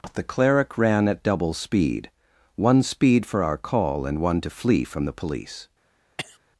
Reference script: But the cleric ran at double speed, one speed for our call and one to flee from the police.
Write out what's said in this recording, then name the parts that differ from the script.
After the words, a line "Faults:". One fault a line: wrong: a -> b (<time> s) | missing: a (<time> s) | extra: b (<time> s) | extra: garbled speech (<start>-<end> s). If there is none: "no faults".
the cleric ran at double speed, one speed for our call and one to flee from the police.
Faults:
missing: But (0.1 s)